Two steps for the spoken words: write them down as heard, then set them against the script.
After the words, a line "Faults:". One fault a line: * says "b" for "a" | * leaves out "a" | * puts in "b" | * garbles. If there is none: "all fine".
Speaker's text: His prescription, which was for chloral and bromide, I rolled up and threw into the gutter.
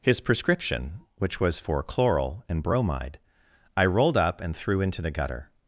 His prescription, which was for chloral and bromide, I rolled up and threw into the gutter.
Faults:
all fine